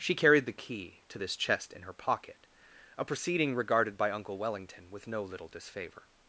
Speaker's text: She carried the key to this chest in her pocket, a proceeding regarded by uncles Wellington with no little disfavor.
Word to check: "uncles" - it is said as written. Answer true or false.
false